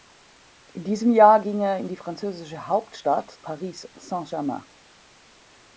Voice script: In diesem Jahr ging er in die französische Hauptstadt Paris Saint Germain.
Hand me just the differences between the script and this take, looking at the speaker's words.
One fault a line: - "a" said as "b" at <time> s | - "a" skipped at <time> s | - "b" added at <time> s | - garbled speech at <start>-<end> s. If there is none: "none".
none